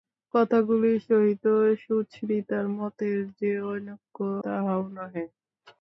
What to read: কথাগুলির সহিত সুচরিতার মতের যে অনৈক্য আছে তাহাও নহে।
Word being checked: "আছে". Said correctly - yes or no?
no